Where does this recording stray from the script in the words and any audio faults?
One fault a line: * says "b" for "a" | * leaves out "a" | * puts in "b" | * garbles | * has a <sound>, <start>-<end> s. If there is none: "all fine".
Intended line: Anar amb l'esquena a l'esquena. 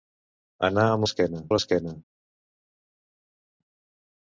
all fine